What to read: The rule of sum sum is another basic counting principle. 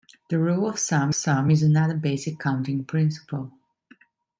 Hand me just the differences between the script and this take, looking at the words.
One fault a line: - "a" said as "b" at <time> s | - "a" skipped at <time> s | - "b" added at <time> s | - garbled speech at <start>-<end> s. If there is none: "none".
none